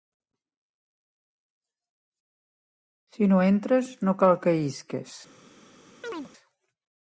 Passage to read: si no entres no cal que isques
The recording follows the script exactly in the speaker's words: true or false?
true